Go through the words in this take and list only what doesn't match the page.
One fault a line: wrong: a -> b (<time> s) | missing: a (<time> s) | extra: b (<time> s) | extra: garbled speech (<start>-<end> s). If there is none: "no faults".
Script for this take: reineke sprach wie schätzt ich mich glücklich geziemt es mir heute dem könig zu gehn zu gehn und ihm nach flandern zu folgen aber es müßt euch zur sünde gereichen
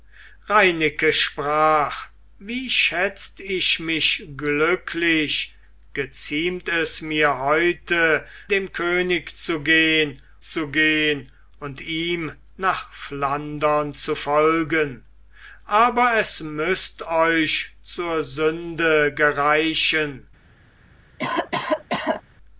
no faults